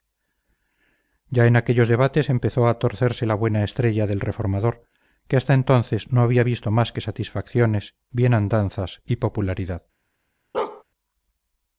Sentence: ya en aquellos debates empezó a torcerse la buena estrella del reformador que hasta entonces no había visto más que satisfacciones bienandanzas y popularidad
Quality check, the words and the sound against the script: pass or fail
fail